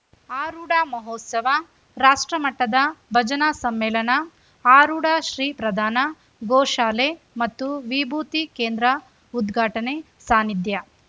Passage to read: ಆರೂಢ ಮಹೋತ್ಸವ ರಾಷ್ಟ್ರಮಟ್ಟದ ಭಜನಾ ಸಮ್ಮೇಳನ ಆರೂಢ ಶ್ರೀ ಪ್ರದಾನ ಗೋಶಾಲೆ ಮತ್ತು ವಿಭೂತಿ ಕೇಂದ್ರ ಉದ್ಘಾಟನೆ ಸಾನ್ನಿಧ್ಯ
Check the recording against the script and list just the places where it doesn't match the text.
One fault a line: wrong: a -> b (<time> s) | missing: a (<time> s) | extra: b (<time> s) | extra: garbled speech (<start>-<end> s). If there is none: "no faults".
no faults